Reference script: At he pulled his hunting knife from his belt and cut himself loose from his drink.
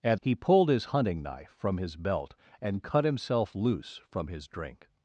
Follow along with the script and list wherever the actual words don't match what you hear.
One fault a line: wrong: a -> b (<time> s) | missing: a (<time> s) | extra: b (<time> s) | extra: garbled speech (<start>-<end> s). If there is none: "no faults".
no faults